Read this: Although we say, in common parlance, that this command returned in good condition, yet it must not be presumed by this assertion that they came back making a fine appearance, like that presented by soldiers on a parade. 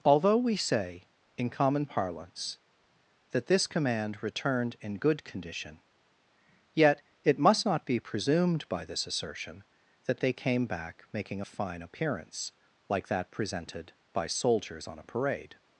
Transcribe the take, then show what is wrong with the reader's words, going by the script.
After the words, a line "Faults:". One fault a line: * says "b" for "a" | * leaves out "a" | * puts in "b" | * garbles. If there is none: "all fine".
Although we say, in common parlance, that this command returned in good condition, yet it must not be presumed by this assertion that they came back making a fine appearance, like that presented by soldiers on a parade.
Faults:
all fine